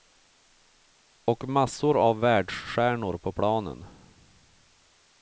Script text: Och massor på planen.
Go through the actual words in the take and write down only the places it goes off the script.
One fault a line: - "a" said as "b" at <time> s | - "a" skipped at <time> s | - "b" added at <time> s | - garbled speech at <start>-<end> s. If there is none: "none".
- "av världsstjärnor" added at 2.0 s